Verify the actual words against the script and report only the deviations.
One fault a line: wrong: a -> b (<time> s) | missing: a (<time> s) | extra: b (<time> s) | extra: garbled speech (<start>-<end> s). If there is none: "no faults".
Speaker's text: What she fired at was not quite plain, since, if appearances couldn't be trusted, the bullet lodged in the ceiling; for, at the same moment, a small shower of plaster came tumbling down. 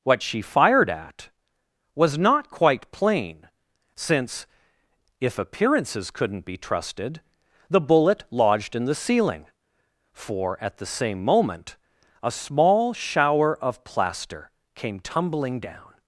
no faults